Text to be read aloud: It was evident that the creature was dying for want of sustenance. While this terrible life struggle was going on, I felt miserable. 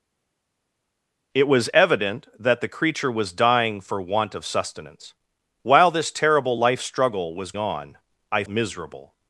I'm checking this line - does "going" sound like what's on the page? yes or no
no